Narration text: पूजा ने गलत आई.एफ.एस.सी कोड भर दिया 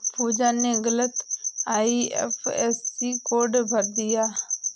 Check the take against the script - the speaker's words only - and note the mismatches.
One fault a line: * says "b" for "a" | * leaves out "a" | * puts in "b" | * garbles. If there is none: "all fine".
all fine